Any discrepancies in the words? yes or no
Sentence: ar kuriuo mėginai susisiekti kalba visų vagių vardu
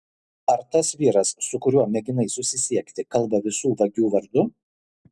yes